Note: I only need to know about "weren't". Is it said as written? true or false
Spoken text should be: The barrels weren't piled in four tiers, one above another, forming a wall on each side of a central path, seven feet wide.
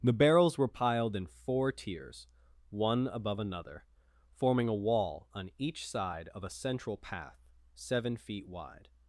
false